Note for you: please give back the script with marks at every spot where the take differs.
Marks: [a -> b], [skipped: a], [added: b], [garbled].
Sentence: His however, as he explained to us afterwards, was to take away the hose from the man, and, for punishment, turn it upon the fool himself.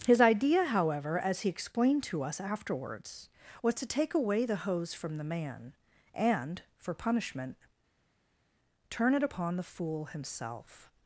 His [added: idea] however, as he explained to us afterwards, was to take away the hose from the man, and, for punishment, turn it upon the fool himself.